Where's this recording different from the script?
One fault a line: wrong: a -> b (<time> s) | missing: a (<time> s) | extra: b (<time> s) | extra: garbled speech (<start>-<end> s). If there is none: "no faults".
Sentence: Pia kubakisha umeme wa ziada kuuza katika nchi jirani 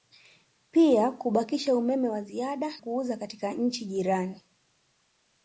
no faults